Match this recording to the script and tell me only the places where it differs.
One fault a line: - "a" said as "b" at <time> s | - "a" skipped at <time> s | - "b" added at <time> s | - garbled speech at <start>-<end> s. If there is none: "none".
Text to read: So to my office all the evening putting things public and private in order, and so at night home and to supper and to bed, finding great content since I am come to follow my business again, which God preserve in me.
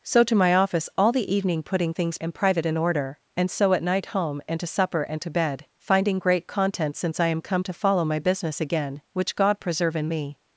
- "public" skipped at 2.2 s